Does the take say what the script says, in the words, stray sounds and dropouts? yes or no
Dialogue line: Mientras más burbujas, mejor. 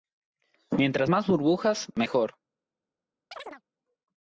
no